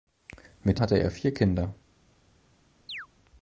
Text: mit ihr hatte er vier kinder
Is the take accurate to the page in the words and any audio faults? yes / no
no